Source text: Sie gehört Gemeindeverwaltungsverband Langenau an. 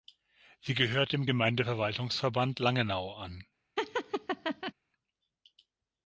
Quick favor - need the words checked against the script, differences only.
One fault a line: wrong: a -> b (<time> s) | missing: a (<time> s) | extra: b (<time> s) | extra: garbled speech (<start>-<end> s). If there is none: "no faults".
extra: dem (1.1 s)